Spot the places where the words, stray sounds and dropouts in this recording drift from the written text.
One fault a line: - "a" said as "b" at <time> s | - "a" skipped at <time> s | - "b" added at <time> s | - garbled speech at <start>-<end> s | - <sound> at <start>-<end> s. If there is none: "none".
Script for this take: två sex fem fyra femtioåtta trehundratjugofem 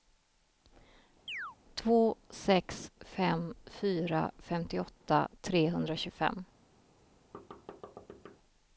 - chirp at 1.3-1.6 s
- thud at 7.3-8.4 s